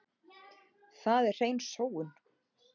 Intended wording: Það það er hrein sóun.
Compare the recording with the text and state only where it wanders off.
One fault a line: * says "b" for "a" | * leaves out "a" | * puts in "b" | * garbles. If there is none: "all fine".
* leaves out "það"